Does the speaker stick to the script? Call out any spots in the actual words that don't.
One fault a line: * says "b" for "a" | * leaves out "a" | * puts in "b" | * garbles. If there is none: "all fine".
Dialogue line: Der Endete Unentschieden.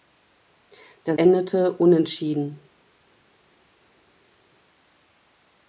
all fine